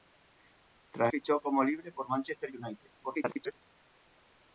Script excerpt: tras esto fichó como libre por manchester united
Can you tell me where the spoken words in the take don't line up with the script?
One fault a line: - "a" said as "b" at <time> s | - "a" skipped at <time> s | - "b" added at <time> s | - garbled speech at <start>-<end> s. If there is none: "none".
- "esto" skipped at 1.1 s
- garbled speech at 3.0-3.6 s